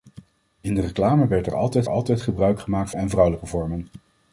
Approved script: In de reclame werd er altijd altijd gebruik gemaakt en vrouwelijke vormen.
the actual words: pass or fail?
pass